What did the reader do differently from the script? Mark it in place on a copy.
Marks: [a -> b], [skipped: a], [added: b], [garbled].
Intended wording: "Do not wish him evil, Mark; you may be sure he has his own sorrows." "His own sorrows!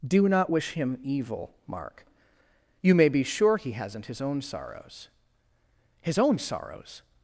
"Do not wish him evil, Mark; you may be sure he [has -> hasn't] his own sorrows." "His own sorrows!